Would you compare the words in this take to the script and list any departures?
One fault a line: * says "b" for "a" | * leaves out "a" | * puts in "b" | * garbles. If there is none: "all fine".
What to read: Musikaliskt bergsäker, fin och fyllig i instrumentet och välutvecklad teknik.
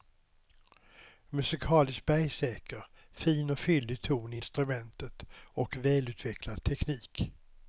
* puts in "ton"